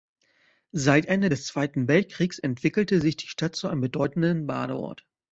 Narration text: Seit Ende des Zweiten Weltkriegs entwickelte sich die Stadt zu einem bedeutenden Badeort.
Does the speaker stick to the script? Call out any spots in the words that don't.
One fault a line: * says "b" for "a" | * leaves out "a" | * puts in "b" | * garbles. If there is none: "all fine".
all fine